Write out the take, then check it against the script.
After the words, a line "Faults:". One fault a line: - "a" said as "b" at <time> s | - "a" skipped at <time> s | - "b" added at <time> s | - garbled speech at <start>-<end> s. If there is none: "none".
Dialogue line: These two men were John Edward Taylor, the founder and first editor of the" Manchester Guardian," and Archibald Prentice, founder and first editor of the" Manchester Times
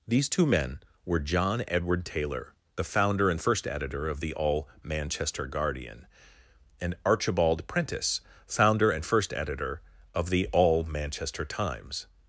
These two men were John Edward Taylor, the founder and first editor of the" all Manchester Guardian," and Archibald Prentice, founder and first editor of the" all Manchester Times
Faults:
- "all" added at 4.3 s
- "all" added at 10.5 s